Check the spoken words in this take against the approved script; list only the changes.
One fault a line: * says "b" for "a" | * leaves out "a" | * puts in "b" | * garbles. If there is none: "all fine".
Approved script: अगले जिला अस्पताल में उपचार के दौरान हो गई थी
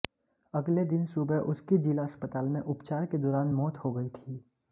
* puts in "दिन सुबह उसकी"
* puts in "मौत"